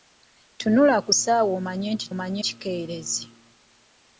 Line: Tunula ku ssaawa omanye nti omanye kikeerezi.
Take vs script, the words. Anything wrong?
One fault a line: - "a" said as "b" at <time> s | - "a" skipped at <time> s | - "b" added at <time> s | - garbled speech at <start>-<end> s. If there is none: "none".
none